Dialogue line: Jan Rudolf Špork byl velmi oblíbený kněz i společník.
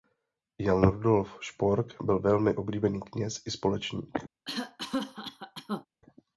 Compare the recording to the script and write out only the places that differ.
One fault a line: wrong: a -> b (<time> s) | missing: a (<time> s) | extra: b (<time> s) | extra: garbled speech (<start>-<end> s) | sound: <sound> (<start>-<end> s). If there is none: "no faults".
sound: cough (4.5-5.9 s)